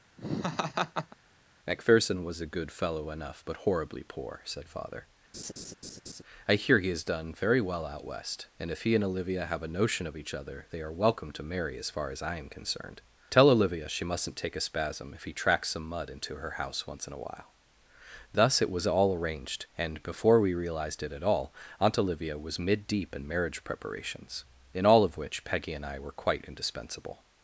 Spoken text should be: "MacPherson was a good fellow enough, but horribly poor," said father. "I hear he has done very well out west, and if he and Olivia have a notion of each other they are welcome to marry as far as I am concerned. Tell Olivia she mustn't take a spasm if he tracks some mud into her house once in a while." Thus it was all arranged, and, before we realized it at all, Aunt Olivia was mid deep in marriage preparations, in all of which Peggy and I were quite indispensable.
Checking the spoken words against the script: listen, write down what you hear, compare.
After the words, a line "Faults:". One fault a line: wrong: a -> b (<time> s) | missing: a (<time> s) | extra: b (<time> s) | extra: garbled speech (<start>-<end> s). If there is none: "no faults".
"MacPherson was a good fellow enough, but horribly poor," said father. "I hear he has done very well out west, and if he and Olivia have a notion of each other they are welcome to marry as far as I am concerned. Tell Olivia she mustn't take a spasm if he tracks some mud into her house once in a while." Thus it was all arranged, and, before we realized it at all, Aunt Olivia was mid deep in marriage preparations, in all of which Peggy and I were quite indispensable.
Faults:
no faults